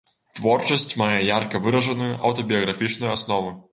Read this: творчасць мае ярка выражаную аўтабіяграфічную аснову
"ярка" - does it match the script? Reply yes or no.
yes